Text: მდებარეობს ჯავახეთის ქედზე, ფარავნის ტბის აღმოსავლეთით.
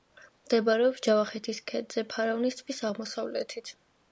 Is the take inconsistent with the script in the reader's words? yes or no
no